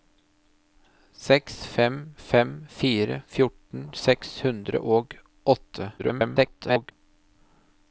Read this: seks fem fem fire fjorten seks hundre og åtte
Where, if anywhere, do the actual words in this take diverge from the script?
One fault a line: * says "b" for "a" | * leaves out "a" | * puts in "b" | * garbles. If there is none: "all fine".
* garbles